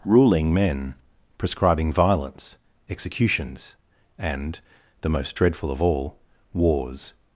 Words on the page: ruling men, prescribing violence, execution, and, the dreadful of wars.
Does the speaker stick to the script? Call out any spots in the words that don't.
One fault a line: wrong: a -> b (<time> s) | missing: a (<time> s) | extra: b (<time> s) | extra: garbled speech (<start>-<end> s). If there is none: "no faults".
wrong: execution -> executions (2.9 s)
extra: most (5.1 s)
extra: all (5.8 s)